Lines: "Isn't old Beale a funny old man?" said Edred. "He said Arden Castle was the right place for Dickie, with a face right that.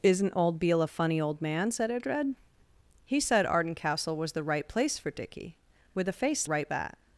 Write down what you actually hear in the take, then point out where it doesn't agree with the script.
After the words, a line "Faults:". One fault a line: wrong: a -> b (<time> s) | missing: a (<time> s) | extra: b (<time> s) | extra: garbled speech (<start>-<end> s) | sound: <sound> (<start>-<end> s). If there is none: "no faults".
"Isn't old Beale a funny old man?" said Edred. "He said Arden Castle was the right place for Dickie, with a face right that.
Faults:
no faults